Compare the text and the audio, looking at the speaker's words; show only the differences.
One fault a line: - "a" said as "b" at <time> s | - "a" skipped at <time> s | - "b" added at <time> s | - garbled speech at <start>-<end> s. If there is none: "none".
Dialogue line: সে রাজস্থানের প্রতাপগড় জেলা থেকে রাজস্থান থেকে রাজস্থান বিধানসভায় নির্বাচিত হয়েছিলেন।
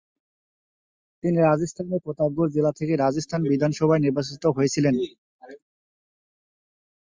- "সে" said as "তিনি" at 1.2 s
- "থেকে রাজস্থান" skipped at 3.4 s